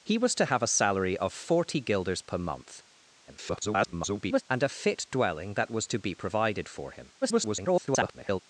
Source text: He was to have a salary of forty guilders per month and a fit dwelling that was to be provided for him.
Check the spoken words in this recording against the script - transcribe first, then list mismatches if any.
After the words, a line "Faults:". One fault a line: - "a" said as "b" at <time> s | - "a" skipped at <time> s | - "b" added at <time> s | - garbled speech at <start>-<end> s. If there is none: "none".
He was to have a salary of forty guilders per month [garbled] and a fit dwelling that was to be provided for him. [garbled]
Faults:
- garbled speech at 3.3-4.4 s
- garbled speech at 7.2-8.4 s